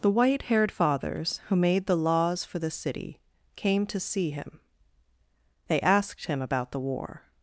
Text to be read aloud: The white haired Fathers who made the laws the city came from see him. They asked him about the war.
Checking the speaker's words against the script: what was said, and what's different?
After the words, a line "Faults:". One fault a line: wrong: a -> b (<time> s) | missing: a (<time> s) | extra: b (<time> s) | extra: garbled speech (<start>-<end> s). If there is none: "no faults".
The white haired Fathers who made the laws for the city came to see him. They asked him about the war.
Faults:
extra: for (2.4 s)
wrong: from -> to (3.9 s)